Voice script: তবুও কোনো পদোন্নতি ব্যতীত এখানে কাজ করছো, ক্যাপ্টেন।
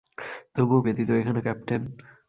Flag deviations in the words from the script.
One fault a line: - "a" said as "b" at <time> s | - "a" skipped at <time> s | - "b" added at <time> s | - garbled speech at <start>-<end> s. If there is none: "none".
- "কোনো পদোন্নতি" skipped at 0.8 s
- "কাজ করছো" skipped at 1.4 s